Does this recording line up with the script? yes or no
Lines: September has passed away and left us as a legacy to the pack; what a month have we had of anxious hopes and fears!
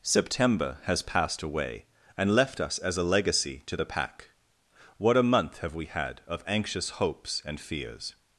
yes